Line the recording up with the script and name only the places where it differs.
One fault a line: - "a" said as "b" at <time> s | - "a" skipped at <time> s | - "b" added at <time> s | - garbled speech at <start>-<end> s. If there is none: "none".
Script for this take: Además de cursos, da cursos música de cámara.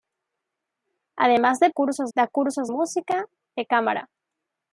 none